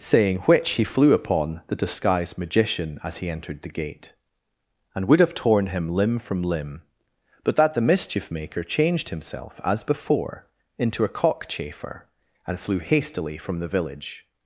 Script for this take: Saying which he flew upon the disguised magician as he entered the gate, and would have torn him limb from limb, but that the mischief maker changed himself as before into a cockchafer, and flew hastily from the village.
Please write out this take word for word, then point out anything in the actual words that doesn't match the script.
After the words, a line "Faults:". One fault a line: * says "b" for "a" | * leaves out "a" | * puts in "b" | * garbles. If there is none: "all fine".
Saying which he flew upon the disguised magician as he entered the gate, and would have torn him limb from limb, but that the mischief maker changed himself as before into a cockchafer, and flew hastily from the village.
Faults:
all fine